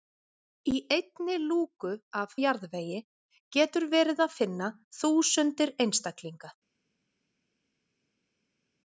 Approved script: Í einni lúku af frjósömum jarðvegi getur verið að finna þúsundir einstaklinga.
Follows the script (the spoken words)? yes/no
no